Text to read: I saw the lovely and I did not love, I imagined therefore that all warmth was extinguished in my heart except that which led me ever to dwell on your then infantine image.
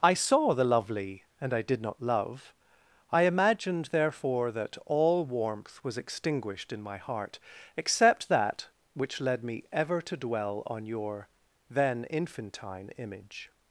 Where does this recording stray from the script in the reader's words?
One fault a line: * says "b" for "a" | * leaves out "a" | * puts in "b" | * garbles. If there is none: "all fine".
all fine